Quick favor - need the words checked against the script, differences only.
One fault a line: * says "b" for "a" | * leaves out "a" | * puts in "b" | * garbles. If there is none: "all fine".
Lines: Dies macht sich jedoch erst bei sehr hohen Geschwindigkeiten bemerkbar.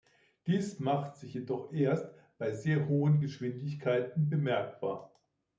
all fine